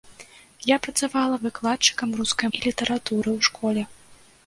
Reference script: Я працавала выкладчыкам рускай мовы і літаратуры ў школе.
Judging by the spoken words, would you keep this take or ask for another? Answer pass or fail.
fail